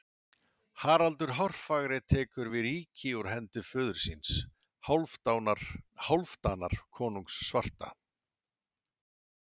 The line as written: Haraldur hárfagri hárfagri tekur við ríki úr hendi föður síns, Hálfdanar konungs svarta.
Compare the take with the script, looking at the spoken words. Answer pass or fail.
fail